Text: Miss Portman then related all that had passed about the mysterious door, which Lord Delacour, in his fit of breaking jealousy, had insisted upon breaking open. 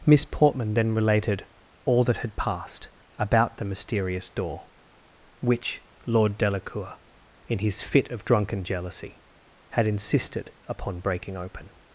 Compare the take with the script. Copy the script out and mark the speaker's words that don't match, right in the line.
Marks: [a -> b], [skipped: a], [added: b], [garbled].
Miss Portman then related all that had passed about the mysterious door, which Lord Delacour, in his fit of [breaking -> drunken] jealousy, had insisted upon breaking open.